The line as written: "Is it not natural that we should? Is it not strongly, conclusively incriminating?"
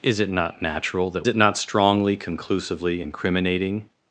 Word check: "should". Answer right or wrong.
wrong